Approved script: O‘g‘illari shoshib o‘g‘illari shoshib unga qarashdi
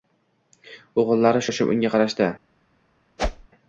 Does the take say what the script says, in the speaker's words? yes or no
no